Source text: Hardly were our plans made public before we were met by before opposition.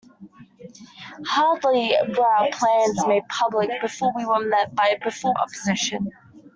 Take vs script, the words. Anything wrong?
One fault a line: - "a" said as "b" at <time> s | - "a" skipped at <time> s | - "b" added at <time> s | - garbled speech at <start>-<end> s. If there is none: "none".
none